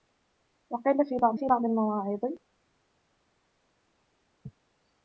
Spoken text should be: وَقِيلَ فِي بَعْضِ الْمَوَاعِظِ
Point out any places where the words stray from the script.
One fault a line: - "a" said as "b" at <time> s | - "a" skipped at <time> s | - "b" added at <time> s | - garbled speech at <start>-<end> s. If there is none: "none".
- "فِي بَعْضِ" added at 1.4 s